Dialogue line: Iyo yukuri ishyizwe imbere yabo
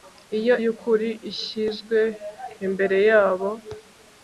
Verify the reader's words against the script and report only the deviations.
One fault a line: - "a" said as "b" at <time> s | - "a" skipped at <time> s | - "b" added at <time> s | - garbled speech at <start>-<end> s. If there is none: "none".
none